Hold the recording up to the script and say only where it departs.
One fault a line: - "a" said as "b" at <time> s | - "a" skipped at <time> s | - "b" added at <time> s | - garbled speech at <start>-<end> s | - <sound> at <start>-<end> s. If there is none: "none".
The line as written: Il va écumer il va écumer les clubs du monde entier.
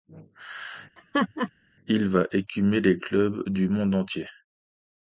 - laugh at 1.0-1.5 s
- "il va écumer" skipped at 2.8 s